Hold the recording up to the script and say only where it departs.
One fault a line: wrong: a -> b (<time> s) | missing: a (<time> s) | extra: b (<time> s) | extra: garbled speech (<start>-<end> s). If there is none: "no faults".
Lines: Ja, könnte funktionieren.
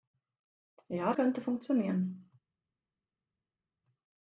no faults